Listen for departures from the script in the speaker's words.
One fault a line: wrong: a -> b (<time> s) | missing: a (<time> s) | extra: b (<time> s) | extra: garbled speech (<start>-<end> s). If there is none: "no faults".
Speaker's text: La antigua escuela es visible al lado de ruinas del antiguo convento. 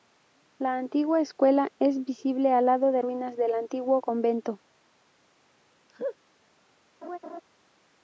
no faults